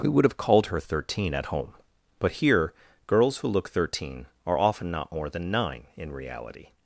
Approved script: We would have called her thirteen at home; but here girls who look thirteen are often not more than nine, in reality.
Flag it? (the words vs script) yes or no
no